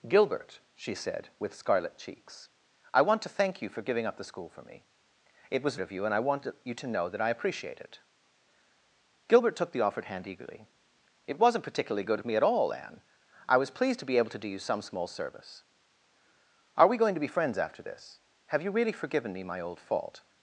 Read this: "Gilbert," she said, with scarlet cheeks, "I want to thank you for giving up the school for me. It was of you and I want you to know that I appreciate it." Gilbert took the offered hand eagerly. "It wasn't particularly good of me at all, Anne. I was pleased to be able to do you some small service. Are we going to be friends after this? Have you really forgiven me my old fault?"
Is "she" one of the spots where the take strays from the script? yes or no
no